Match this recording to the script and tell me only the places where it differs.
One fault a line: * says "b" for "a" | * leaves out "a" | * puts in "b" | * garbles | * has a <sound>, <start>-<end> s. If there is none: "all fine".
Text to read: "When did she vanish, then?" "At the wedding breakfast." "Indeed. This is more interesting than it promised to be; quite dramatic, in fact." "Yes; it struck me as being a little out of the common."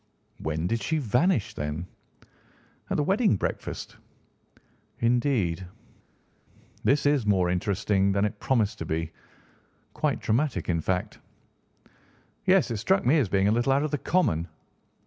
all fine